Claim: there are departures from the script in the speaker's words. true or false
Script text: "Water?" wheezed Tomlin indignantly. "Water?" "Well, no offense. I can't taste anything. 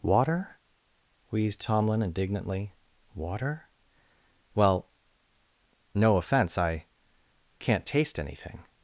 false